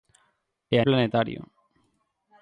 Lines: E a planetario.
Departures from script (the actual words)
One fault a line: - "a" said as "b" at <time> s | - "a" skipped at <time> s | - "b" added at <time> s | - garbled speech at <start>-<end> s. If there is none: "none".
none